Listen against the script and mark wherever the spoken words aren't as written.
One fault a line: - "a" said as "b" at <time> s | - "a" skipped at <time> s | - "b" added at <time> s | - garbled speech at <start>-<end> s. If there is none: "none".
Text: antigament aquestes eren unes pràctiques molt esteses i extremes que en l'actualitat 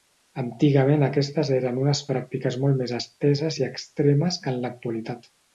- "més" added at 2.8 s